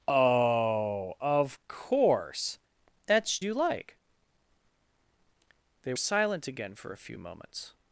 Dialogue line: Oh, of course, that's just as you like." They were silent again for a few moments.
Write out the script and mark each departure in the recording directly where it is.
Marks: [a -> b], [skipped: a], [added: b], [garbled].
Oh, of course, that's [skipped: just as] you like." They [skipped: were] silent again for a few moments.